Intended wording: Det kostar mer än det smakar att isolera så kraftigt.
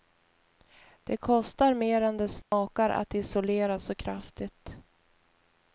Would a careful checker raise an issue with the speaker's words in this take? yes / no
no